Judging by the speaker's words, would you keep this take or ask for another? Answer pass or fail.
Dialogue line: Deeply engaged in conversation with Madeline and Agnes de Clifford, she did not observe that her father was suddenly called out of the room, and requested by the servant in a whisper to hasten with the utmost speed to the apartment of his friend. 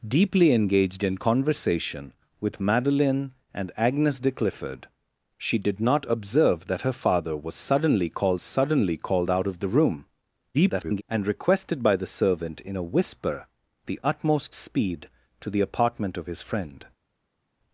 fail